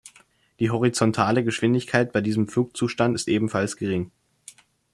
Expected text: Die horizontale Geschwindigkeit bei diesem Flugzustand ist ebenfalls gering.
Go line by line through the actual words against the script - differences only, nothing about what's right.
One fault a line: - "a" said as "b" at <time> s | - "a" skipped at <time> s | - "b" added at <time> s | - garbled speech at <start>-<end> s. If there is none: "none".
none